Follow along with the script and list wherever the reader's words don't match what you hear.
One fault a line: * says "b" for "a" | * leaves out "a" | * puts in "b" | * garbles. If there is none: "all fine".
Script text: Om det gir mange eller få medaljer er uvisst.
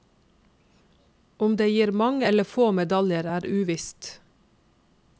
all fine